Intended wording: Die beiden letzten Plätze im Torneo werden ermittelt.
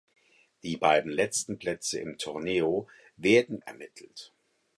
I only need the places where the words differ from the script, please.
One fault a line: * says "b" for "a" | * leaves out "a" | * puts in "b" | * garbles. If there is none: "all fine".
all fine